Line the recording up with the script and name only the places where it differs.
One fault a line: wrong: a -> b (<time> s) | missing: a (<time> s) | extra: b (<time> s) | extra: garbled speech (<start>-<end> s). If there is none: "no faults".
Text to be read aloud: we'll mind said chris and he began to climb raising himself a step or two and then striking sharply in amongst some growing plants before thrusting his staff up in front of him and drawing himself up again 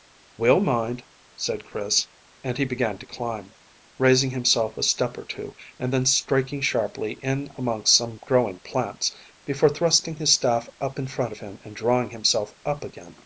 no faults